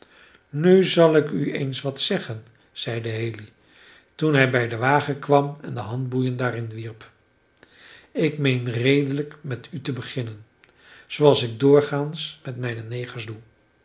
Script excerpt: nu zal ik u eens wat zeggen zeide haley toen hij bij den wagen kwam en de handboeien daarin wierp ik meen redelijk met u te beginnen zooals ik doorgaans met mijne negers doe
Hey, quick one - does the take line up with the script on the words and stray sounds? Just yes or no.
yes